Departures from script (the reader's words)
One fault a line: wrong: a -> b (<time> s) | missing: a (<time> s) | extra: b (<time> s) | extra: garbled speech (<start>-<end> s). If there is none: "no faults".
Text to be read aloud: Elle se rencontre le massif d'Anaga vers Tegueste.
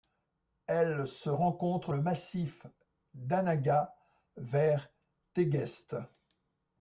no faults